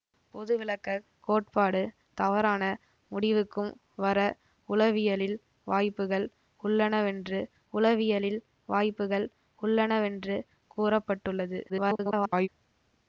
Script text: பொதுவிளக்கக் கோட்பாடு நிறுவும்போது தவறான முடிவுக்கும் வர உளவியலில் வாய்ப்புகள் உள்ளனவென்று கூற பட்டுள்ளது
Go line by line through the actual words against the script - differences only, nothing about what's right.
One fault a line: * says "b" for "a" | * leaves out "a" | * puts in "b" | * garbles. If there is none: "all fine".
* leaves out "நிறுவும்போது"
* puts in "உளவியலில் வாய்ப்புகள் உள்ளனவென்று"
* garbles